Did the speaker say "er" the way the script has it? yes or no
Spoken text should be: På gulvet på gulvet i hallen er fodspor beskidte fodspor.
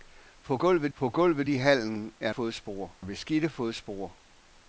yes